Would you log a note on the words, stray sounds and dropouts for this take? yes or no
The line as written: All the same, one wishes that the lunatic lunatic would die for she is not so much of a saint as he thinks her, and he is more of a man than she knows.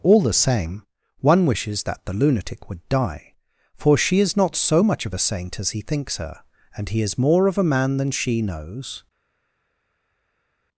yes